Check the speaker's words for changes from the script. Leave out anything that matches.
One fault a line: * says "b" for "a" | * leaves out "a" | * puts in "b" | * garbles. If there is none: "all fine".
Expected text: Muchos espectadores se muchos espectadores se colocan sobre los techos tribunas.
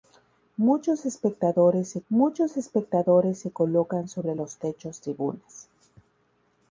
all fine